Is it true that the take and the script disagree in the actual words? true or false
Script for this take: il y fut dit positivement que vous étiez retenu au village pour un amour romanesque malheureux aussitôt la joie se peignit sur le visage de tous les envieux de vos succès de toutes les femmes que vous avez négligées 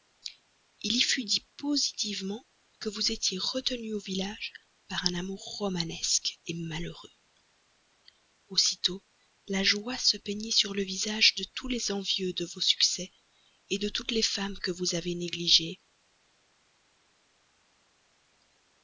true